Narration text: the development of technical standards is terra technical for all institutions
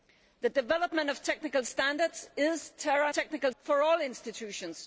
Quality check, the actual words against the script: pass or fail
pass